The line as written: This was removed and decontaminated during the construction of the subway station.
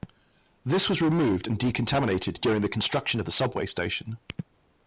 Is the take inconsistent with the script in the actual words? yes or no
no